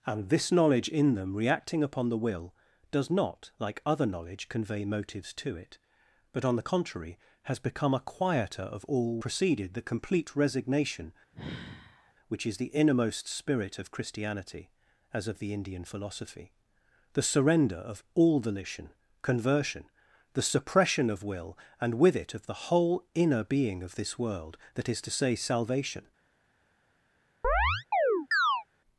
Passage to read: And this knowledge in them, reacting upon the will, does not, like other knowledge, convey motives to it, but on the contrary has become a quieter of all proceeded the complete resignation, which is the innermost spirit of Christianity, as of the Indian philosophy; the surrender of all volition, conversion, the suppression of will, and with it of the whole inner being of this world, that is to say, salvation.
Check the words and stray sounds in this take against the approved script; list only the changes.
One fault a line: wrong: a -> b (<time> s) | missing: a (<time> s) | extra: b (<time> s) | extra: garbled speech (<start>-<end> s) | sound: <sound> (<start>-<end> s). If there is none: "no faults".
sound: sigh (11.3-12.1 s)
sound: chirp (27.4-28.6 s)